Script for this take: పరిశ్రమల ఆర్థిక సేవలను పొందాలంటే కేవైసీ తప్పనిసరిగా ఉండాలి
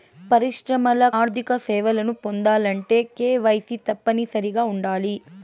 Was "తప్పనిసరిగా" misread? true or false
false